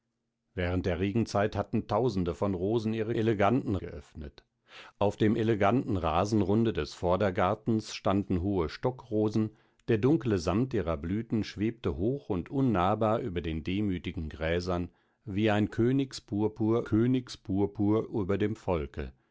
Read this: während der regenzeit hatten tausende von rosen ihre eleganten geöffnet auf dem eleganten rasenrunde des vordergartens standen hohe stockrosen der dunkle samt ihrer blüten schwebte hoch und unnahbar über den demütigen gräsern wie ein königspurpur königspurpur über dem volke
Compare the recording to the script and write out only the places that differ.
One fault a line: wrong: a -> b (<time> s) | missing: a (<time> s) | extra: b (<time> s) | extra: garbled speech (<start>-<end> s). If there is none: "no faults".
no faults